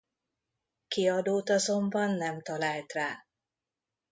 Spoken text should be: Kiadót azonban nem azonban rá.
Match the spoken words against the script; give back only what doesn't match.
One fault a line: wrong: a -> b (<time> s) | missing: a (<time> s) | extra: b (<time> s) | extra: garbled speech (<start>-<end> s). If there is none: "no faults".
wrong: azonban -> talált (2.4 s)